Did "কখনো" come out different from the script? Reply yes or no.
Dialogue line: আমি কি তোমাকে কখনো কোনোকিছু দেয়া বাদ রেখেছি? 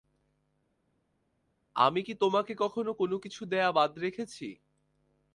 no